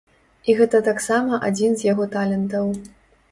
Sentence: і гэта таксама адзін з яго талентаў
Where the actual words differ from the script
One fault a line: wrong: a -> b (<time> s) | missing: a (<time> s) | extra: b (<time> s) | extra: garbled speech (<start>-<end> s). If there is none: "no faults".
no faults